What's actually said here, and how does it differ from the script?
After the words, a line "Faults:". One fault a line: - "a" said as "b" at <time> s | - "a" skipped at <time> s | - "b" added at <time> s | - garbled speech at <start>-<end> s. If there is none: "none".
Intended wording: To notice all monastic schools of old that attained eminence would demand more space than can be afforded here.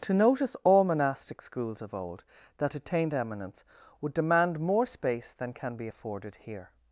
To notice all monastic schools of old that attained eminence would demand more space than can be afforded here.
Faults:
none